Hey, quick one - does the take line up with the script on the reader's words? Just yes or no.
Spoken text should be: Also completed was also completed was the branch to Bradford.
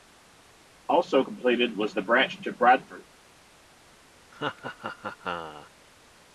no